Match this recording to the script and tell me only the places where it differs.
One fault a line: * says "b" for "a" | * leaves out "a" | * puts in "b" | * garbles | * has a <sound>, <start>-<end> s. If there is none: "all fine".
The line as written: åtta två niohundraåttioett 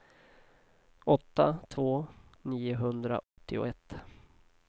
* has a dropout, 3.2-3.4 s